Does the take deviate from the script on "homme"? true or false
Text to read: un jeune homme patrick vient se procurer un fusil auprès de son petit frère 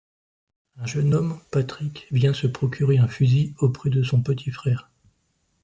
false